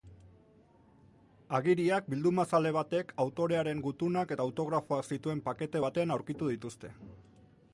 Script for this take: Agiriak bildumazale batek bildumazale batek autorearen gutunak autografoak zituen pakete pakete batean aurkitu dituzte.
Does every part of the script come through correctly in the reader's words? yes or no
no